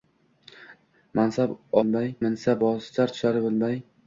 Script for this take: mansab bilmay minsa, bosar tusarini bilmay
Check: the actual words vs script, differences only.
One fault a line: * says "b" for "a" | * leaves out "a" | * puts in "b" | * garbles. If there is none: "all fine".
all fine